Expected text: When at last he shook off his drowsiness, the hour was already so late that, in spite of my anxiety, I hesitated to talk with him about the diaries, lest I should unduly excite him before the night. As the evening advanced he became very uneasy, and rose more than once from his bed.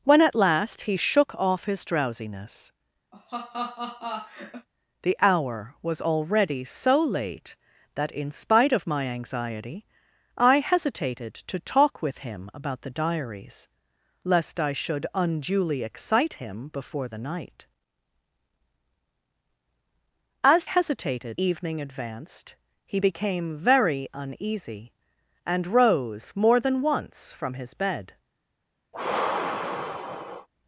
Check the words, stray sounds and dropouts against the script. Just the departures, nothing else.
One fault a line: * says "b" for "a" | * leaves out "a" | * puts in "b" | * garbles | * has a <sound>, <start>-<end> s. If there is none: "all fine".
* has a laugh, 3.1-4.7 s
* says "hesitated" for "the"
* has a sigh, 28.9-30.5 s